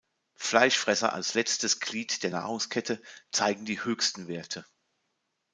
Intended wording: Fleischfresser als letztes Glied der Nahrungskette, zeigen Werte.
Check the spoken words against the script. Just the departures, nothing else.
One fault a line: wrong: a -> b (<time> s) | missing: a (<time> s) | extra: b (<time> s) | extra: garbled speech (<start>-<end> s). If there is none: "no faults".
extra: die höchsten (3.6 s)